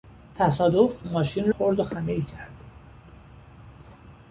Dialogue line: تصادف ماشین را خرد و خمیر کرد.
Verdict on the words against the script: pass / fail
fail